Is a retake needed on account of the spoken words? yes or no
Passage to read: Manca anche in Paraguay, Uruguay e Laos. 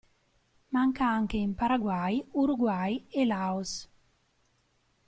no